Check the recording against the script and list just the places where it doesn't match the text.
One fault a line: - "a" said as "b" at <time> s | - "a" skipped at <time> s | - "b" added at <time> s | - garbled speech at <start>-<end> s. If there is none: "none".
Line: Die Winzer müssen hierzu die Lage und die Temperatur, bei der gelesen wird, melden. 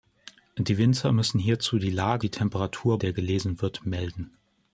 - "und" skipped at 2.2 s
- "bei" skipped at 3.0 s